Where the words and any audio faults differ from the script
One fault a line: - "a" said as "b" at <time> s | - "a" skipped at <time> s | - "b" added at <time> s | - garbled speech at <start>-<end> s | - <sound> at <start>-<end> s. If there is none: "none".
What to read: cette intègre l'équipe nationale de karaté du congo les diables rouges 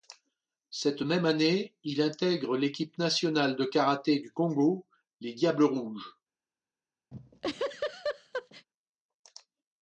- "même année il" added at 1.0 s
- laugh at 7.1-8.7 s